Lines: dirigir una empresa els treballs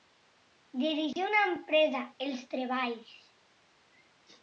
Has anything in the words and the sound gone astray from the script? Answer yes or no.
yes